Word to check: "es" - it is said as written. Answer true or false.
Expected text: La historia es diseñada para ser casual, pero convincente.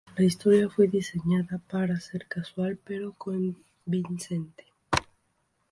false